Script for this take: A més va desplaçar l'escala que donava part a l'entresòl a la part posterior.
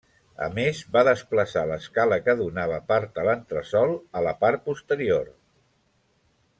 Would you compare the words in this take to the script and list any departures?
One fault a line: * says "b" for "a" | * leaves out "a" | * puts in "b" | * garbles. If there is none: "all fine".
all fine